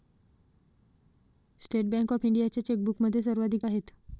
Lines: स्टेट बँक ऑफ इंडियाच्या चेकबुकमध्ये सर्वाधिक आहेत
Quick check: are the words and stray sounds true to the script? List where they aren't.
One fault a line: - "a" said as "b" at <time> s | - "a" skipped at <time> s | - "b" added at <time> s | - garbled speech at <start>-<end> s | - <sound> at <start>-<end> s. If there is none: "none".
none